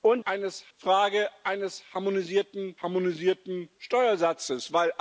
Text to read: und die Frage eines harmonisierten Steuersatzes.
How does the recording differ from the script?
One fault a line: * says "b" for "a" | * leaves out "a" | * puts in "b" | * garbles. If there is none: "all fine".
* says "eines" for "die"
* puts in "harmonisierten"